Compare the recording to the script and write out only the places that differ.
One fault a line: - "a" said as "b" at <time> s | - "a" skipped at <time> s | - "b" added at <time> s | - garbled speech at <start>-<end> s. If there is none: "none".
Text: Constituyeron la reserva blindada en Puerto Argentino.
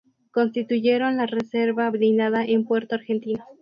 none